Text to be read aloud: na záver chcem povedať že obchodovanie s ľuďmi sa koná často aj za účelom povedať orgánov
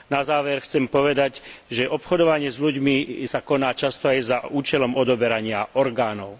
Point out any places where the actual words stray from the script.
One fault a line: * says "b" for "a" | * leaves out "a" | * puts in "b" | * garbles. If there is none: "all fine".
* says "odoberania" for "povedať"